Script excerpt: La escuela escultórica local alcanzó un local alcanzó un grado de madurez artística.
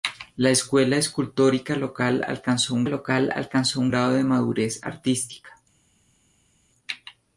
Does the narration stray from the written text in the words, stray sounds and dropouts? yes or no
no